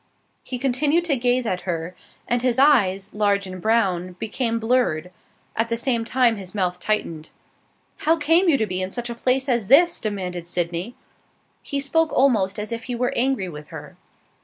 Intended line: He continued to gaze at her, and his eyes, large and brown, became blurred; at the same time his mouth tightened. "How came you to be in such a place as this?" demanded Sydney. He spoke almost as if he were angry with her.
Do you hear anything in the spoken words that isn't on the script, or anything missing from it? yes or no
no